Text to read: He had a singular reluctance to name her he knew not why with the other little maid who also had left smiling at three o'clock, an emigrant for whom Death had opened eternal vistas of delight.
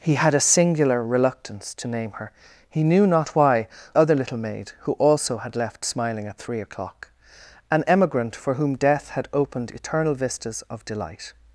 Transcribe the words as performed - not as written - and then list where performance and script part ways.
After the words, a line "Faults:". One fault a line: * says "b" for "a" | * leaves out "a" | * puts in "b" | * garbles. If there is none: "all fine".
He had a singular reluctance to name her he knew not why other little maid who also had left smiling at three o'clock, an emigrant for whom Death had opened eternal vistas of delight.
Faults:
* leaves out "with the"